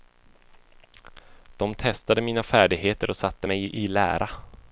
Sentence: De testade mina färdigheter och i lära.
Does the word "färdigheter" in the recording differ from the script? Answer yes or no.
no